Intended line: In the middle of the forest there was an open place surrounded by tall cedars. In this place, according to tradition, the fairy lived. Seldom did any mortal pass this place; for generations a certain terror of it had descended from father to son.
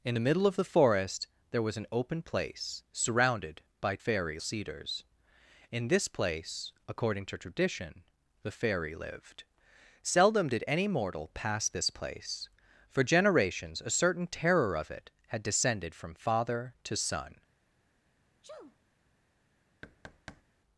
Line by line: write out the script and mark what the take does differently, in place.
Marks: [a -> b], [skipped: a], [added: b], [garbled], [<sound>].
In the middle of the forest there was an open place surrounded by [tall -> fairy] cedars. In this place, according to tradition, the fairy lived. Seldom did any mortal pass this place; for generations a certain terror of it had descended from father to son. [sneeze] [thud]